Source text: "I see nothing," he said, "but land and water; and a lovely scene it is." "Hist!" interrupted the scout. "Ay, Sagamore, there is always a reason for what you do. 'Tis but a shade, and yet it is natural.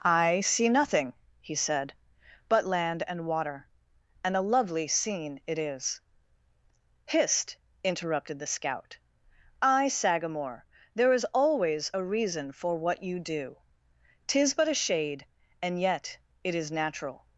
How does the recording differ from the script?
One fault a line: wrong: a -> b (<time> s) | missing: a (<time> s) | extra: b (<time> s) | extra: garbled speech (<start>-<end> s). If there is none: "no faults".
no faults